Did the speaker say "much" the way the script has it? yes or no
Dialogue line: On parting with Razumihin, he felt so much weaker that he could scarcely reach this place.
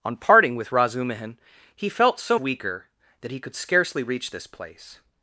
no